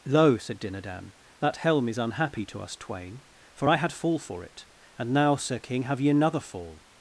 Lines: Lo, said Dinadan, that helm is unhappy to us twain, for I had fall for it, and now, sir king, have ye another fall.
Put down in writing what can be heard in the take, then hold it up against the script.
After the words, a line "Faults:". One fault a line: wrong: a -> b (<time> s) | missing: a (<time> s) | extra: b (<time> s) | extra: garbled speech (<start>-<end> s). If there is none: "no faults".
Lo, said Dinadan, that helm is unhappy to us twain, for I had fall for it, and now, sir king, have ye another fall.
Faults:
no faults